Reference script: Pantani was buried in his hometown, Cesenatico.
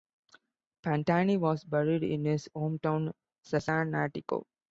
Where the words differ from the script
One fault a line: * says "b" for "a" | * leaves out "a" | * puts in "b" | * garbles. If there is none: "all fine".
all fine